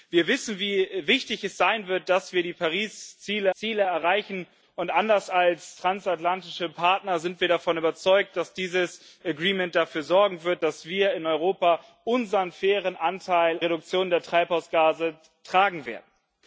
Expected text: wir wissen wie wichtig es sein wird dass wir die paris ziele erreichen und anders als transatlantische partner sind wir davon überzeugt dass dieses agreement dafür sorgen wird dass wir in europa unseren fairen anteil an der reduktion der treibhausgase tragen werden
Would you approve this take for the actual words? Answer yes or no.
no